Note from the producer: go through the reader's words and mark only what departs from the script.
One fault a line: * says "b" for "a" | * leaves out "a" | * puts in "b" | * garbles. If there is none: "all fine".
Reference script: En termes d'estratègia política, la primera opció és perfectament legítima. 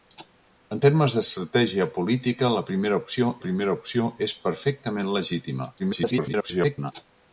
* puts in "primera opció"
* garbles